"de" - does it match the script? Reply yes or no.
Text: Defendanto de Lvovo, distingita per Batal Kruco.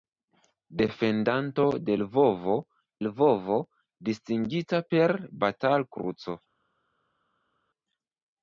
yes